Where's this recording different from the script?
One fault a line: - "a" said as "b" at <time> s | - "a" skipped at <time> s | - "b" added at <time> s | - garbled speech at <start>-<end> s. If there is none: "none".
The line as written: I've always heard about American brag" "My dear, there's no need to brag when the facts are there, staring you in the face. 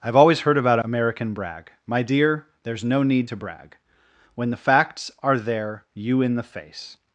- "staring" skipped at 5.8 s